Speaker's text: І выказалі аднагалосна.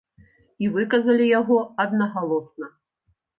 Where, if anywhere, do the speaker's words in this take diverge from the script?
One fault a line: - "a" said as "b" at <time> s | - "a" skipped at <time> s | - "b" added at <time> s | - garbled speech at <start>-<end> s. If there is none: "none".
- "яго" added at 1.4 s